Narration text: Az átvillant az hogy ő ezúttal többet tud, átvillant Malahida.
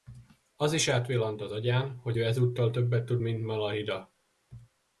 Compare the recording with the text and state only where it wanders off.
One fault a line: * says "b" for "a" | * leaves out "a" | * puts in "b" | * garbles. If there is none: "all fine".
* puts in "is"
* puts in "agyán"
* says "mint" for "átvillant"